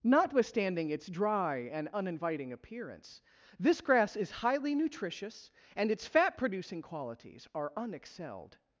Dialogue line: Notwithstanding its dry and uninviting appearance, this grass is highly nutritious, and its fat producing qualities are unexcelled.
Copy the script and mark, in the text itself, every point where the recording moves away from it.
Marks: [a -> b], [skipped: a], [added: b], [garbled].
Notwithstanding its dry and uninviting appearance, this grass is highly nutritious, and its fat producing qualities are unexcelled.